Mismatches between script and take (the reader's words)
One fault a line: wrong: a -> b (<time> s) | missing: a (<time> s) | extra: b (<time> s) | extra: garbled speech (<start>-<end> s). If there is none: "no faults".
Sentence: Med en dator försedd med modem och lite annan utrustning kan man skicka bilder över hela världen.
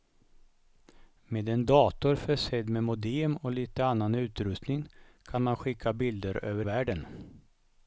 missing: hela (6.7 s)